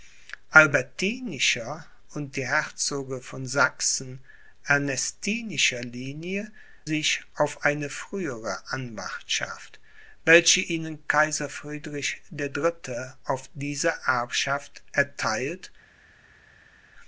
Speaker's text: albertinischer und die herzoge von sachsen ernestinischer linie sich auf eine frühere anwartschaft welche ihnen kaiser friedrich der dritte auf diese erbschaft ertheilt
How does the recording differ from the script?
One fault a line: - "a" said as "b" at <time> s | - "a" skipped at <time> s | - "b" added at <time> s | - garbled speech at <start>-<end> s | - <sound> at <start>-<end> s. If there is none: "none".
none